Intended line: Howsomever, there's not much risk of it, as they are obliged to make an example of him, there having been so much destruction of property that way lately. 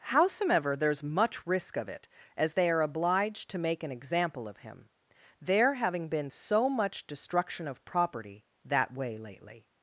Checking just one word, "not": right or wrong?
wrong